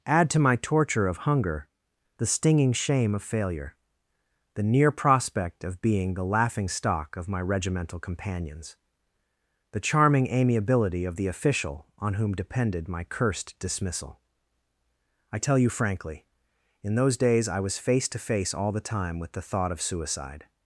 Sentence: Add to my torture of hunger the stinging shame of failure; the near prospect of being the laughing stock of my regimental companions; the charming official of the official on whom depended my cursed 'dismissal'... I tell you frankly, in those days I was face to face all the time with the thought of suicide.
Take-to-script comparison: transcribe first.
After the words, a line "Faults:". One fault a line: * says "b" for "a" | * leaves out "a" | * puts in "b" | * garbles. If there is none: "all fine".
Add to my torture of hunger the stinging shame of failure; the near prospect of being the laughing stock of my regimental companions; the charming amiability of the official on whom depended my cursed 'dismissal'... I tell you frankly, in those days I was face to face all the time with the thought of suicide.
Faults:
* says "amiability" for "official"